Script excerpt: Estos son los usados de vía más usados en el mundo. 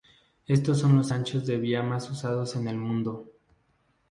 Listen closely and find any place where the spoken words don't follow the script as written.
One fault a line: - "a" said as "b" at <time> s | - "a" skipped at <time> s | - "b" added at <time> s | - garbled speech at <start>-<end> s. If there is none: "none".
- "usados" said as "anchos" at 1.1 s